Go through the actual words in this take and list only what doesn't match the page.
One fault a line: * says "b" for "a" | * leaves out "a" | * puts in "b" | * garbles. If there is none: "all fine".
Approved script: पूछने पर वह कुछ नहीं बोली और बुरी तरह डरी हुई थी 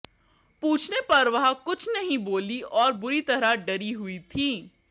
all fine